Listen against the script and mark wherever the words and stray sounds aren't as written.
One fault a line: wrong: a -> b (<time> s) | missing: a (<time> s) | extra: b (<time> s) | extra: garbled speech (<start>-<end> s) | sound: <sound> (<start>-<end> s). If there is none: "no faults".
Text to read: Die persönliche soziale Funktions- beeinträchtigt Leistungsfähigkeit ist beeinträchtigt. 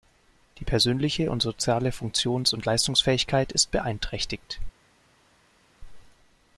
extra: und (1.3 s)
wrong: beeinträchtigt -> und (2.5 s)